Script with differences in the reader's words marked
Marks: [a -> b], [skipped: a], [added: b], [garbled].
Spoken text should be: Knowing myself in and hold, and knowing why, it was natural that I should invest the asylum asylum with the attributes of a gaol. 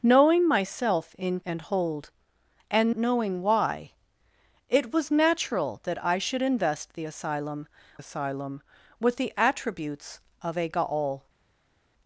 Knowing myself in and hold, and knowing why, it was natural that I should invest the asylum asylum with the attributes of a gaol.